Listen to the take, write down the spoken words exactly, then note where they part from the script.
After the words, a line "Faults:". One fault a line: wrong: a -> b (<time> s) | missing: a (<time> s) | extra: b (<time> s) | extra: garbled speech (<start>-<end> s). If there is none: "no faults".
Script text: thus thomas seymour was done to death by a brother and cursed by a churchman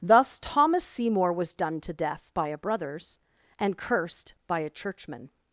thus thomas seymour was done to death by a brothers and cursed by a churchman
Faults:
wrong: brother -> brothers (2.6 s)